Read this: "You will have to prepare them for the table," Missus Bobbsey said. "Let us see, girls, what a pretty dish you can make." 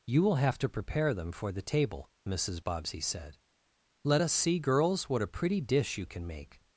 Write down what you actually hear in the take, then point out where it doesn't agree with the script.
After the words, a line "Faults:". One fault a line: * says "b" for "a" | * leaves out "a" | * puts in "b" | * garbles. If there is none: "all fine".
"You will have to prepare them for the table," Missus Bobbsey said. "Let us see, girls, what a pretty dish you can make."
Faults:
all fine